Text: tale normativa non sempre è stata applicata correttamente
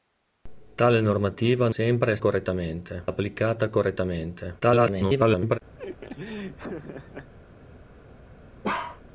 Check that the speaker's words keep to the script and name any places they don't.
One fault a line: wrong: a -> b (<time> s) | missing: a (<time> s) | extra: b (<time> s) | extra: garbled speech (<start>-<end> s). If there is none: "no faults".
missing: non (1.7 s)
wrong: stata -> correttamente (2.2 s)
extra: garbled speech (4.6-5.6 s)